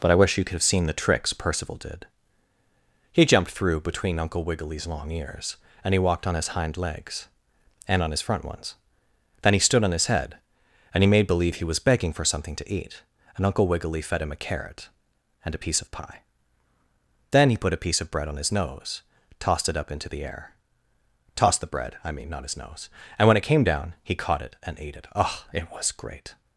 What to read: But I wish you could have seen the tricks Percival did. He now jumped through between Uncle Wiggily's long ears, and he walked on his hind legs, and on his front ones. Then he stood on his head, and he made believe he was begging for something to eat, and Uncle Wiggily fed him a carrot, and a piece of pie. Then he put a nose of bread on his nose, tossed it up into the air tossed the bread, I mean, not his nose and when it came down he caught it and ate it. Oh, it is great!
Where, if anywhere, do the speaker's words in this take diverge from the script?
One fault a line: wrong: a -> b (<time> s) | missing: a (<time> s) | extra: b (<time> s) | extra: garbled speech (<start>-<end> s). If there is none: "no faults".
missing: now (3.2 s)
wrong: nose -> piece (17.9 s)
wrong: is -> was (25.7 s)